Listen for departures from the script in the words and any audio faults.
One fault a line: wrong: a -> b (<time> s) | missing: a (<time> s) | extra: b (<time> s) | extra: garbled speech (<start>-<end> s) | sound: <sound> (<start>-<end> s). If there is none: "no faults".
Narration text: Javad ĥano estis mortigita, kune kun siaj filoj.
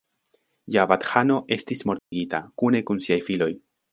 sound: dropout (2.0-2.1 s)